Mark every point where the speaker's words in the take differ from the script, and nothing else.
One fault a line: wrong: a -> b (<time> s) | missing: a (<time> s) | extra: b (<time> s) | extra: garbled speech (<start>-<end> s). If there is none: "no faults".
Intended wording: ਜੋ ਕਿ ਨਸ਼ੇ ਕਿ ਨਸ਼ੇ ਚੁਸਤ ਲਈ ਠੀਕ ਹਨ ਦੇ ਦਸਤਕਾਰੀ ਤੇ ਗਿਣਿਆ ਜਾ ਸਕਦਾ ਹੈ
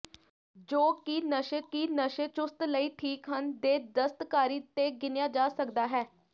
no faults